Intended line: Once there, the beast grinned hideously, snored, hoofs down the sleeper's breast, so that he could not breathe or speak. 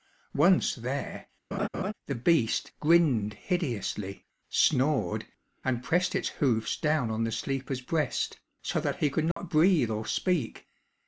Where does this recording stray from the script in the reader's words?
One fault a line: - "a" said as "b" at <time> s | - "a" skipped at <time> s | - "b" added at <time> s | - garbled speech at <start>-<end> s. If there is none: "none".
- "and pressed its" added at 5.7 s
- "on" added at 7.1 s